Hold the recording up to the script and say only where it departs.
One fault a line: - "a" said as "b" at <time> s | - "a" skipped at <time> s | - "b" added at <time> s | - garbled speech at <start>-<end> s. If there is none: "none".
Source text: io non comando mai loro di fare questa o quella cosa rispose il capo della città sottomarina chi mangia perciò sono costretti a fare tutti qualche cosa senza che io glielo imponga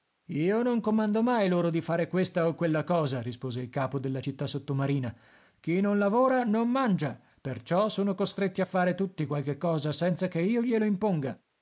- "non lavora non" added at 5.8 s